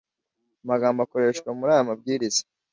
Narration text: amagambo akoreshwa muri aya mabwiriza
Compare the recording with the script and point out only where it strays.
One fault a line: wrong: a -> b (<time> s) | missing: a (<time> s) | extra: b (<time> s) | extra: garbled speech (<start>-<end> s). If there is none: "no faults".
no faults